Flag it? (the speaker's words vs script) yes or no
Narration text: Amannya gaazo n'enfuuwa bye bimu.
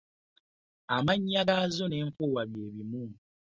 no